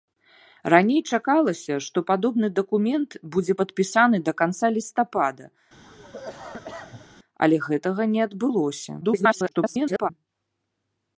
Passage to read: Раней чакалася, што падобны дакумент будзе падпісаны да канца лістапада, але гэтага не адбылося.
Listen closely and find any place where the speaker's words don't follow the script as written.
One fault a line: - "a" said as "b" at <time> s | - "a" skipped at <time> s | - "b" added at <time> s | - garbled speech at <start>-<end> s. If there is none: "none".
- garbled speech at 9.0-10.1 s